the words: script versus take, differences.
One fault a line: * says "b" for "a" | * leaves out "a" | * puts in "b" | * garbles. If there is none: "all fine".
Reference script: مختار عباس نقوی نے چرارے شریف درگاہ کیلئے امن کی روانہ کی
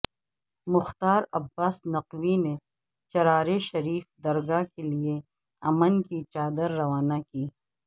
* puts in "چادر"